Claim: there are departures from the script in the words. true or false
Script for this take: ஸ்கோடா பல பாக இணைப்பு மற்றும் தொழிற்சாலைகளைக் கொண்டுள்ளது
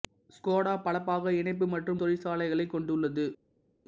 false